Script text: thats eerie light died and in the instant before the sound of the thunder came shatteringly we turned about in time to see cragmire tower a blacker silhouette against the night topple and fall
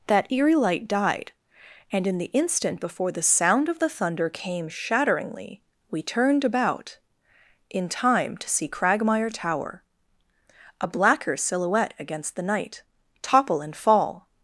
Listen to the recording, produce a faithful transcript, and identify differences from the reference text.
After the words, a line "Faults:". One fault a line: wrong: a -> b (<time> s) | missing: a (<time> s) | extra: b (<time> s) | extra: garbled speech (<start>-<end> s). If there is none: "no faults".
that eerie light died and in the instant before the sound of the thunder came shatteringly we turned about in time to see cragmire tower a blacker silhouette against the night topple and fall
Faults:
wrong: thats -> that (0.1 s)